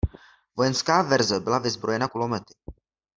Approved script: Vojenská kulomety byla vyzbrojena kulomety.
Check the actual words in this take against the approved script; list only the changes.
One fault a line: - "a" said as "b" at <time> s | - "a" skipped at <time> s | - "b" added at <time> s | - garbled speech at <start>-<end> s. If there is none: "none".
- "kulomety" said as "verze" at 1.0 s